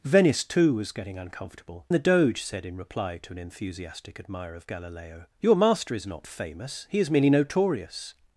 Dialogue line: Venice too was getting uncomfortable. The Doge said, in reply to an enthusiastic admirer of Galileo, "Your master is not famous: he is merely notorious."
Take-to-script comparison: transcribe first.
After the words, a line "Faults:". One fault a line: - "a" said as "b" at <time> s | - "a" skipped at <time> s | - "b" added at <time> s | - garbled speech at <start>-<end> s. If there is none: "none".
Venice too was getting uncomfortable. The Doge said, in reply to an enthusiastic admirer of Galileo, "Your master is not famous: he is merely notorious."
Faults:
none